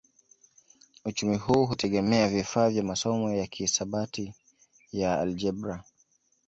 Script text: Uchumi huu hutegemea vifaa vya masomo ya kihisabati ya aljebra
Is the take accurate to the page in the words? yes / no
yes